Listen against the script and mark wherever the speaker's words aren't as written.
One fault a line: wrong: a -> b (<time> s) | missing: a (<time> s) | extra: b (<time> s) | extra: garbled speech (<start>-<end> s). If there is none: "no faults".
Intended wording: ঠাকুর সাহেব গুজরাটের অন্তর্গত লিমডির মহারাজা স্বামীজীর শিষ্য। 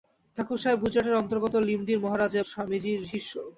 no faults